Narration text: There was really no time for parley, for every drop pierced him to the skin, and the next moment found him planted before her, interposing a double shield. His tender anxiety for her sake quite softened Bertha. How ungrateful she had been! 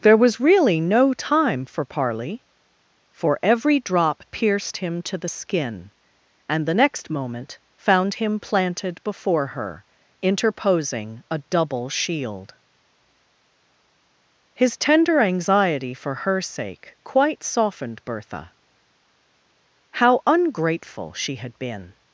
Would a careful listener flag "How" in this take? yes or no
no